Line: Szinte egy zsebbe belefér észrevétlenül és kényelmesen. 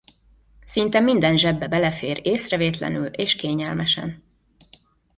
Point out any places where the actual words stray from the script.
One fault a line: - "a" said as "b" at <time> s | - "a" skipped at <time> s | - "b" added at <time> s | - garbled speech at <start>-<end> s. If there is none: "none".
- "egy" said as "minden" at 1.0 s